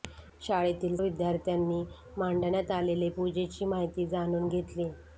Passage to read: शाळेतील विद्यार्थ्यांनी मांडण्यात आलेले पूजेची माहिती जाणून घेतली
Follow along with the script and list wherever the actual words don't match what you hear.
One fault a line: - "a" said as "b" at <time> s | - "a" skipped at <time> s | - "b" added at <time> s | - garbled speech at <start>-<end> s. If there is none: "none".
none